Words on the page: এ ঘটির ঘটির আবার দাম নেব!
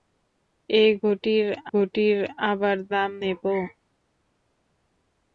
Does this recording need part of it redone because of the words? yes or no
no